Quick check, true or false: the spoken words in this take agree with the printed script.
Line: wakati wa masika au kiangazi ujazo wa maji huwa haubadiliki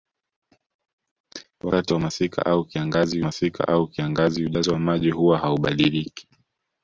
false